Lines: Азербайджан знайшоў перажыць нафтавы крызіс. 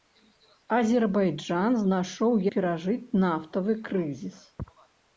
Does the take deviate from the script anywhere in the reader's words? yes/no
no